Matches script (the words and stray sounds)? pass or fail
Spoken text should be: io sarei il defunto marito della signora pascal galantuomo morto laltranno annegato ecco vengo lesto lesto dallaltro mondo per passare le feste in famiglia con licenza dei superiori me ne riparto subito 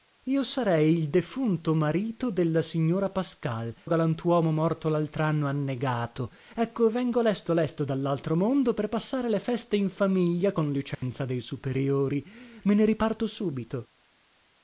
fail